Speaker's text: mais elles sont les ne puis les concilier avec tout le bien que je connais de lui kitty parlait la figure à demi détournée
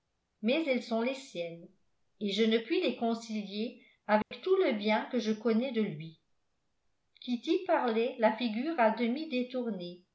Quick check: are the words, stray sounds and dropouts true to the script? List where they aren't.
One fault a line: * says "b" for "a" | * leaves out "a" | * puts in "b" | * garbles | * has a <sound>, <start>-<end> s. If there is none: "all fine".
* puts in "siennes et je"
* has a dropout, 4.2-4.3 s